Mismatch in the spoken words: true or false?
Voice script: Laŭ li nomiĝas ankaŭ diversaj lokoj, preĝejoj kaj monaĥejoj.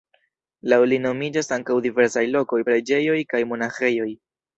false